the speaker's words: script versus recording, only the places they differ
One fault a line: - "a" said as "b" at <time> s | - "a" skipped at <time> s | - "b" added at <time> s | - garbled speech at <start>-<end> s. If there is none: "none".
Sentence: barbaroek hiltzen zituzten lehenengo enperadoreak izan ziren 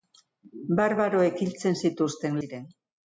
- "lehenengo enperadoreak izan" skipped at 2.4 s